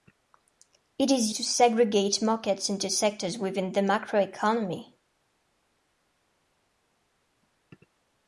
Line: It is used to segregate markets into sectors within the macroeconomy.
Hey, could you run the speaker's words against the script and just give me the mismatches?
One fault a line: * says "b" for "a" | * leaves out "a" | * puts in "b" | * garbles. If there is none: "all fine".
* leaves out "used"